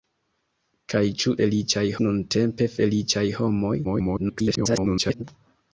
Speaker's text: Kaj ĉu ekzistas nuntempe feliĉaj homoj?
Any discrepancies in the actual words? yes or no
yes